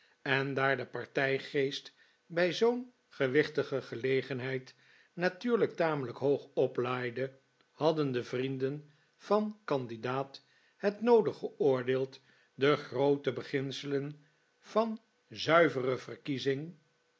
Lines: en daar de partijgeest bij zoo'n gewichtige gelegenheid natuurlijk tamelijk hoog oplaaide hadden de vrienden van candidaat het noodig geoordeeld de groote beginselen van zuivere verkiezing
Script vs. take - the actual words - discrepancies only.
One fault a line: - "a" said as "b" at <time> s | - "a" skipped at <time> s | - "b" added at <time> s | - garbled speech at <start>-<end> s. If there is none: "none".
none